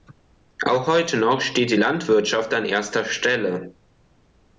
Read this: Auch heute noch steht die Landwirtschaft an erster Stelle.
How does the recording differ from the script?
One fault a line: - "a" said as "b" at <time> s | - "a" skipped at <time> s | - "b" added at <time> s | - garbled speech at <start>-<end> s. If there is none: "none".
none